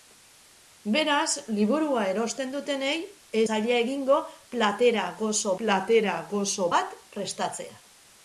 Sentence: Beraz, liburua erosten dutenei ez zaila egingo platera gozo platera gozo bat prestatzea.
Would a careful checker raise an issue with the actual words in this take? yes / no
no